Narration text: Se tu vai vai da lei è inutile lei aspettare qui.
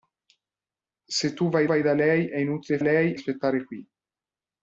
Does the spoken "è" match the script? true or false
true